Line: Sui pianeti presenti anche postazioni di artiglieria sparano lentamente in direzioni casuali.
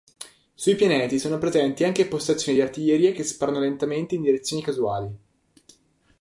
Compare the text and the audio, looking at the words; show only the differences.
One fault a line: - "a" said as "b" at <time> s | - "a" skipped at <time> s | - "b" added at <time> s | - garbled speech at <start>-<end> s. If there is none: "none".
- "sono" added at 1.2 s
- "che" added at 3.1 s